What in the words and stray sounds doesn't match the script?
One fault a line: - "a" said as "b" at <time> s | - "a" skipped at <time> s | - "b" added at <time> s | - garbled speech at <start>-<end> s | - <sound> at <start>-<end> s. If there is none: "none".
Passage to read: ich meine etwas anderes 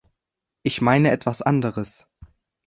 none